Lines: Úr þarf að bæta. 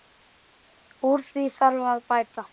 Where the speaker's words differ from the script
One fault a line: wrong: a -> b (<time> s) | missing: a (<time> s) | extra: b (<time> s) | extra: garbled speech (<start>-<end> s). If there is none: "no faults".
extra: því (1.3 s)